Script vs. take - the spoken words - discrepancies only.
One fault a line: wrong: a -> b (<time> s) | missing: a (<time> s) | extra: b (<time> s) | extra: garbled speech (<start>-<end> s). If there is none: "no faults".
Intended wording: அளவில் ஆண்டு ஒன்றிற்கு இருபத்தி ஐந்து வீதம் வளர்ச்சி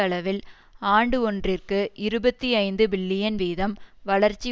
extra: பில்லியன் (2.9 s)